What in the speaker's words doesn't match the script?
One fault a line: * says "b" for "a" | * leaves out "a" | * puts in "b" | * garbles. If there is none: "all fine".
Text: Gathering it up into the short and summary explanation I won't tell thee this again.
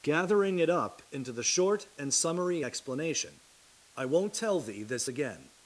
all fine